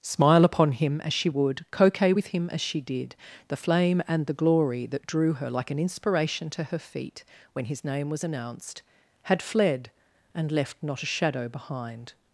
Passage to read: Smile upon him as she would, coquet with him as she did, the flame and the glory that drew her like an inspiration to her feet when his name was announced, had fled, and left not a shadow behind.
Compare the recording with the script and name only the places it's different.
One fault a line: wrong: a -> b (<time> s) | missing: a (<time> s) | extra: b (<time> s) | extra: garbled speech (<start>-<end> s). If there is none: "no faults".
no faults